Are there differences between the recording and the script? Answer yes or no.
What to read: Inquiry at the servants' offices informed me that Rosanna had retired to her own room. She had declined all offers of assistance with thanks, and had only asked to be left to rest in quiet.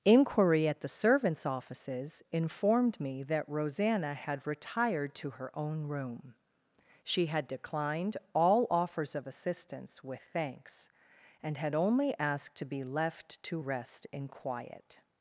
no